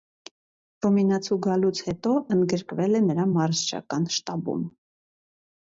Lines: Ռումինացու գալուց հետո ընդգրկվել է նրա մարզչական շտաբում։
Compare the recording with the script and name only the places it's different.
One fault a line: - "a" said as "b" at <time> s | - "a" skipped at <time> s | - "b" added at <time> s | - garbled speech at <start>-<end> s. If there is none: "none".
none